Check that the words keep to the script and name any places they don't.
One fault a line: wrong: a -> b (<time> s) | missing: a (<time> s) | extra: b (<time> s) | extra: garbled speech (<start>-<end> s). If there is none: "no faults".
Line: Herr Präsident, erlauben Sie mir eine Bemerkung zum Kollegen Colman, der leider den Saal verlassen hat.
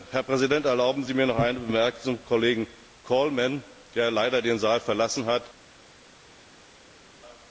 extra: noch (1.3 s)